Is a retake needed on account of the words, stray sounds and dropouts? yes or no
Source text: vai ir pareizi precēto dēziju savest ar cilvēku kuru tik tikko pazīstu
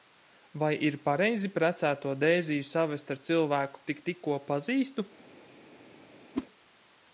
yes